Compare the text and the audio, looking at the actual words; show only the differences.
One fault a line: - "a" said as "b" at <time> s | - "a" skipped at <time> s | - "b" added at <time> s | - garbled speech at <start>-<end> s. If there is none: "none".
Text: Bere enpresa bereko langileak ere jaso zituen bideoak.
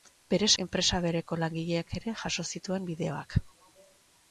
none